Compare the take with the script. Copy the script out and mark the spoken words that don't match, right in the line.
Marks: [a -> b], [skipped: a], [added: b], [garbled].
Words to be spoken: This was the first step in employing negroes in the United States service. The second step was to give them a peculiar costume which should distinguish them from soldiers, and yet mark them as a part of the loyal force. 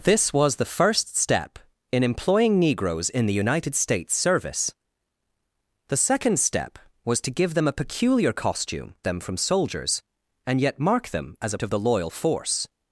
This was the first step in employing negroes in the United States service. The second step was to give them a peculiar costume [skipped: which should distinguish] them from soldiers, and yet mark them as a [skipped: part] of the loyal force.